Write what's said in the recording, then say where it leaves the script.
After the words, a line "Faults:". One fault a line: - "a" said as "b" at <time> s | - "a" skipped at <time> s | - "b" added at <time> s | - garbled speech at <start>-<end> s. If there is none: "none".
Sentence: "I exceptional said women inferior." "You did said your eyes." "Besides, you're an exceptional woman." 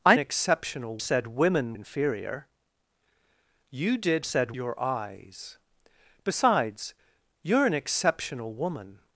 "I exceptional said women inferior." "You did said your eyes." "Besides, you're an exceptional woman."
Faults:
none